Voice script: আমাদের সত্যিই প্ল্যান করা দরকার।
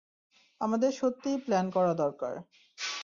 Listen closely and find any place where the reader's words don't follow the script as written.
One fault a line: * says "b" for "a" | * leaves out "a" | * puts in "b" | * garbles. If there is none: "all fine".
all fine